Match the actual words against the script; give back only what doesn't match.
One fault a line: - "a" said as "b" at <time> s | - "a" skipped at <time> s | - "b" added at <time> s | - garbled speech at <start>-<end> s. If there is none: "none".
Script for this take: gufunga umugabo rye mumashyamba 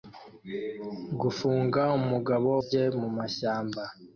none